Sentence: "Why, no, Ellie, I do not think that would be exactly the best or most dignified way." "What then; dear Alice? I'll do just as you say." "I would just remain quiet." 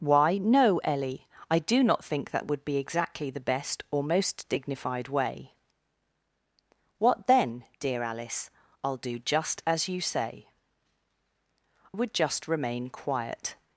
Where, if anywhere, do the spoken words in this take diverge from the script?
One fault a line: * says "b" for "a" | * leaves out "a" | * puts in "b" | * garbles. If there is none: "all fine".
* leaves out "I"